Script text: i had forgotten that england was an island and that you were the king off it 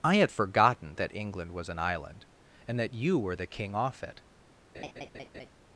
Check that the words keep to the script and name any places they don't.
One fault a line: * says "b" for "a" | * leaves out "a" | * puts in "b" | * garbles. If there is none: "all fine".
all fine